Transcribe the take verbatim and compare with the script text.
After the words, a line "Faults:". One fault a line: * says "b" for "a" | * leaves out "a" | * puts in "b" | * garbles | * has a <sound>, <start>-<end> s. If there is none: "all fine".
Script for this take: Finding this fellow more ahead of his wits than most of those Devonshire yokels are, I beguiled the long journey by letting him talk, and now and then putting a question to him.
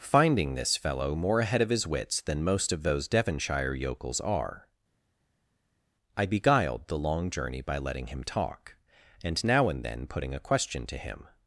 Finding this fellow more ahead of his wits than most of those Devonshire yokels are, I beguiled the long journey by letting him talk, and now and then putting a question to him.
Faults:
all fine